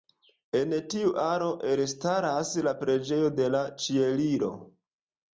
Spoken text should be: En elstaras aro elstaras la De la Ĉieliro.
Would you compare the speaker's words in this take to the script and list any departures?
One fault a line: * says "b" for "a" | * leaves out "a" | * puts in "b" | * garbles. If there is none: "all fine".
* says "tiu" for "elstaras"
* puts in "Preĝejo"